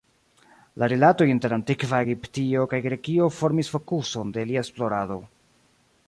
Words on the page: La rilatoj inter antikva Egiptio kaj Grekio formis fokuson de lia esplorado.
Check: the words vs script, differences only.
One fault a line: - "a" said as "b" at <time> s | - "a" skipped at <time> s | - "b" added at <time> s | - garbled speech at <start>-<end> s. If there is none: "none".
none